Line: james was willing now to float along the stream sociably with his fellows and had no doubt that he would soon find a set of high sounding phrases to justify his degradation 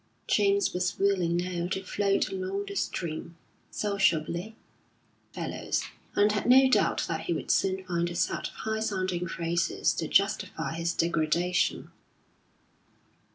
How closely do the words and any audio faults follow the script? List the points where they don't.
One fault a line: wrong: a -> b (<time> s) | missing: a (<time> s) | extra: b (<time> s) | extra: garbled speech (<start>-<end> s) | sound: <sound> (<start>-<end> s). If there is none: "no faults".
missing: with his (4.5 s)